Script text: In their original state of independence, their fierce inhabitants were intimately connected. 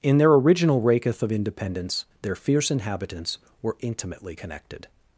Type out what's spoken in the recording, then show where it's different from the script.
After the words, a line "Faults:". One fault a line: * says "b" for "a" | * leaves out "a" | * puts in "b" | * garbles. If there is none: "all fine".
In their original raketh of independence, their fierce inhabitants were intimately connected.
Faults:
* says "raketh" for "state"